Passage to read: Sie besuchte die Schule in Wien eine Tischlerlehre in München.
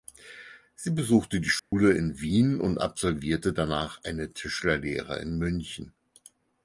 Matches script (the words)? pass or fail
fail